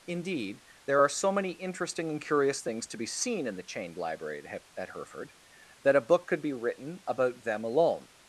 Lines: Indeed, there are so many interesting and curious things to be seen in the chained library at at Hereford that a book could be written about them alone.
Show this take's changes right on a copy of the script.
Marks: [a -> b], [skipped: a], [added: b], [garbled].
Indeed, there are so many interesting and curious things to be seen in the chained library at at Hereford that a book could be written about them alone.